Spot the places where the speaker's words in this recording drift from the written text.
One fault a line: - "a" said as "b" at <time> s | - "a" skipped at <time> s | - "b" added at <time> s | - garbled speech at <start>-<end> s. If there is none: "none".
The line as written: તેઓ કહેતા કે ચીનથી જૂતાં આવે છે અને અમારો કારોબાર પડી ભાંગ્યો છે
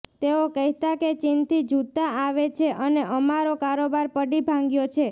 none